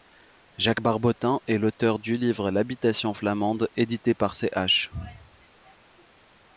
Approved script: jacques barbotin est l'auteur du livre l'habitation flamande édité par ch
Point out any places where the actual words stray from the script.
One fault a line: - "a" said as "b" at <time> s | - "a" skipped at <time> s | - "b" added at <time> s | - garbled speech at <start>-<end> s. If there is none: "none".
none